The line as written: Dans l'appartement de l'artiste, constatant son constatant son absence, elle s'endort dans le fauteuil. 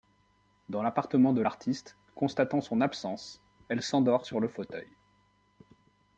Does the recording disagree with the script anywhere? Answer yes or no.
yes